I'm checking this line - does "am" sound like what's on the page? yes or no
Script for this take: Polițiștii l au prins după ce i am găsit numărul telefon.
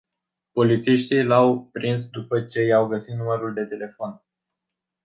no